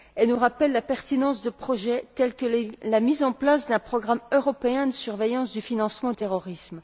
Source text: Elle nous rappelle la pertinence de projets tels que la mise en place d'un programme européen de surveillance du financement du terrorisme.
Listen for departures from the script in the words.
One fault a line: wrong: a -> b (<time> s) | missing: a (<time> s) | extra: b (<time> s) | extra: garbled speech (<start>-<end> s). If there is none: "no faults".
missing: du (6.1 s)